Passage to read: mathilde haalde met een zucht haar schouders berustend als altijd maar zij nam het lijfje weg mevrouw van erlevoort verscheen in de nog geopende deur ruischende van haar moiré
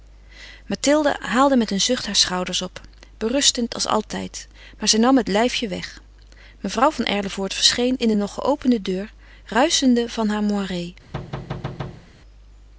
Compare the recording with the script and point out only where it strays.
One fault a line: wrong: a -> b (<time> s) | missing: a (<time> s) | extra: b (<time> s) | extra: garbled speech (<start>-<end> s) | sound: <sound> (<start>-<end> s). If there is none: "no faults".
extra: op (2.6 s)
sound: thud (11.1-12.1 s)